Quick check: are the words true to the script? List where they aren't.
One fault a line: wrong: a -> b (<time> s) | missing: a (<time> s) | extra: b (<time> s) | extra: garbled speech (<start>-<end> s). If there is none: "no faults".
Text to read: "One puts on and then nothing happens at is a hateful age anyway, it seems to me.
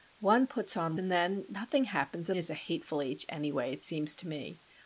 no faults